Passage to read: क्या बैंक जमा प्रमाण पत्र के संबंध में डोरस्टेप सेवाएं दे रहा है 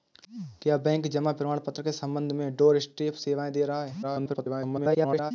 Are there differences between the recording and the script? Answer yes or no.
yes